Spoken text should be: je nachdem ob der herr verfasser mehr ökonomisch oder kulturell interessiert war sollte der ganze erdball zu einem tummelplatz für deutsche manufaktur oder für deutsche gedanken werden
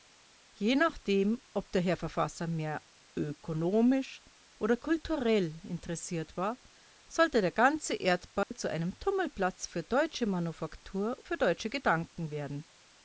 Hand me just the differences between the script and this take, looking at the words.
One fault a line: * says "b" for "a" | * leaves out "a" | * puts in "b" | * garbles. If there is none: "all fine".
* leaves out "oder"